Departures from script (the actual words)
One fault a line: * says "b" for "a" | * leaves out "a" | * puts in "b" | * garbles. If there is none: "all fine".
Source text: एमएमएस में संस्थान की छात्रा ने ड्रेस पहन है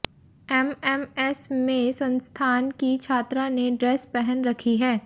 * puts in "रखी"